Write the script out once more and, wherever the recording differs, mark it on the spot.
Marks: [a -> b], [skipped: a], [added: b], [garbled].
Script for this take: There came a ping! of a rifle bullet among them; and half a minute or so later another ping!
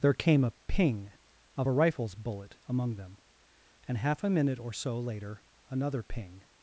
There came a ping! of a [rifle -> rifles] bullet among them; and half a minute or so later another ping!